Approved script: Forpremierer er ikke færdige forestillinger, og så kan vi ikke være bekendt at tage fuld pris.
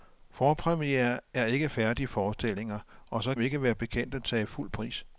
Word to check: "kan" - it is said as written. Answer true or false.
false